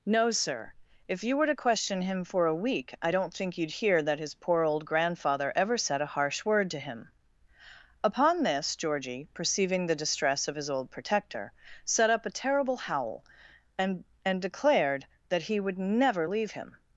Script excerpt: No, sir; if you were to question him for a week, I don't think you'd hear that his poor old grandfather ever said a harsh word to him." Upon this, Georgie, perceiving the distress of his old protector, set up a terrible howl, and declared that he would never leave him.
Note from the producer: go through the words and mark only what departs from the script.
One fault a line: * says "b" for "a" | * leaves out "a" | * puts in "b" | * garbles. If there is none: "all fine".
* puts in "and"